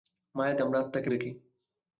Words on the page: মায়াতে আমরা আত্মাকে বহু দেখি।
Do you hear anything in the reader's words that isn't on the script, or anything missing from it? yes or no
yes